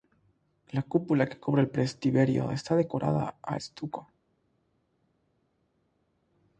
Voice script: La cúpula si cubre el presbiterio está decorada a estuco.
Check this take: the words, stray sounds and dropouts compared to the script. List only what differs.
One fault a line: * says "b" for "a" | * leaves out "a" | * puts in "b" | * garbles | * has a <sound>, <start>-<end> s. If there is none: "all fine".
* says "que" for "si"